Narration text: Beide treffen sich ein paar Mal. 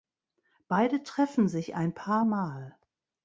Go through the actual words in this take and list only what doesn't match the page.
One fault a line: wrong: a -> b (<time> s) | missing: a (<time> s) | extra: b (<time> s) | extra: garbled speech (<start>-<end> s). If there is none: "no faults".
no faults